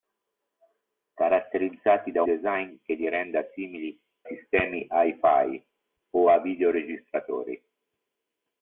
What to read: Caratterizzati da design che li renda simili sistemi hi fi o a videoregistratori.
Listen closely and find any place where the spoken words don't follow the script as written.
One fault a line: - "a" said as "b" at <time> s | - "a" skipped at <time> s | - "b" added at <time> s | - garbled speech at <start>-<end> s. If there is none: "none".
none